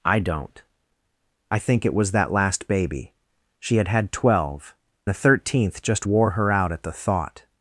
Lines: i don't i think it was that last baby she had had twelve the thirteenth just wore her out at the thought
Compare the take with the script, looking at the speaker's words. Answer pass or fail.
pass